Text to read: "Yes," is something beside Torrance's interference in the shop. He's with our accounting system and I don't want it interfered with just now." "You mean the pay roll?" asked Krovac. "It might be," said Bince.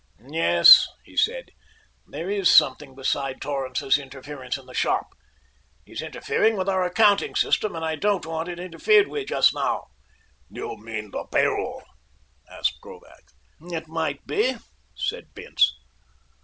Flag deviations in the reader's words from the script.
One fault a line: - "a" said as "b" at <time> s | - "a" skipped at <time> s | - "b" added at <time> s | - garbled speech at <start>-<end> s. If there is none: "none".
- "he said there" added at 1.0 s
- "interfering" added at 6.0 s